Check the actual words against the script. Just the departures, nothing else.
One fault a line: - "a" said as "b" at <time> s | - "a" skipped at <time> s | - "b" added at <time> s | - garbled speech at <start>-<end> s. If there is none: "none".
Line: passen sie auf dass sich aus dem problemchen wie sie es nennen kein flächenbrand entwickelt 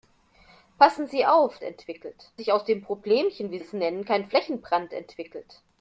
- "dass" said as "entwickelt" at 1.6 s
- "sie" skipped at 3.6 s